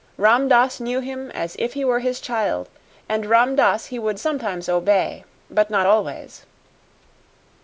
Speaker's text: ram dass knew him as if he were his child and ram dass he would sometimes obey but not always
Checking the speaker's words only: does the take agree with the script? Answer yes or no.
yes